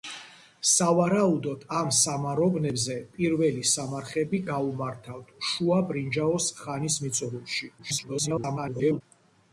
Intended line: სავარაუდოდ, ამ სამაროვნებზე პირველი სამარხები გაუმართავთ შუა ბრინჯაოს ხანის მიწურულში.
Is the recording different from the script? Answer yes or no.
yes